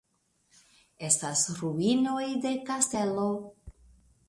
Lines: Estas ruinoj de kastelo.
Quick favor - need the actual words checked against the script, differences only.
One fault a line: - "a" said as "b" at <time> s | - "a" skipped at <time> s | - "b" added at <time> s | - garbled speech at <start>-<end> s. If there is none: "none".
none